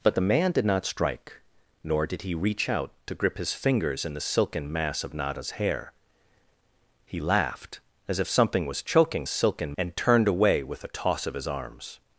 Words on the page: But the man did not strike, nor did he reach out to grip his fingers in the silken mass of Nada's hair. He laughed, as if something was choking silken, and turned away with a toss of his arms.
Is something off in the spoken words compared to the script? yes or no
no